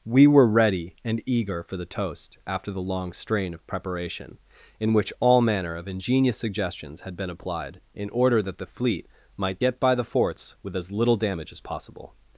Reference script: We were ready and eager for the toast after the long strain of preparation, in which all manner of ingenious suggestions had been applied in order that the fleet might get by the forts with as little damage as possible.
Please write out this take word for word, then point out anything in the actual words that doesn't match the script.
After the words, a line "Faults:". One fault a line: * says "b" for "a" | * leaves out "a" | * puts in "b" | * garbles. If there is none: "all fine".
We were ready and eager for the toast after the long strain of preparation, in which all manner of ingenious suggestions had been applied in order that the fleet might get by the forts with as little damage as possible.
Faults:
all fine